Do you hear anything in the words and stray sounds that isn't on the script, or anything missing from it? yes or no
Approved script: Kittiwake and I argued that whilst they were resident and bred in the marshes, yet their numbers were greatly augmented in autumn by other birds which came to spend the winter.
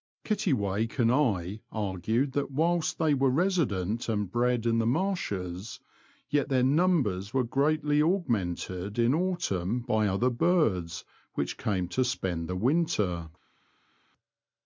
no